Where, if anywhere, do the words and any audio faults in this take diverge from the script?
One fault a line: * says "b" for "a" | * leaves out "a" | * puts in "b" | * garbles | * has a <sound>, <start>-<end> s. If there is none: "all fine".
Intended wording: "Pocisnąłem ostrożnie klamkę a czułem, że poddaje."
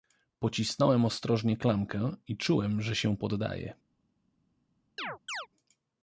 * says "i" for "a"
* puts in "się"
* has a chirp, 5.0-5.5 s